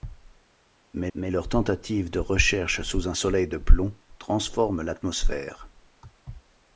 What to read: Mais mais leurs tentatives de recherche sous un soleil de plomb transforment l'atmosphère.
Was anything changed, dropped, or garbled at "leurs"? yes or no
no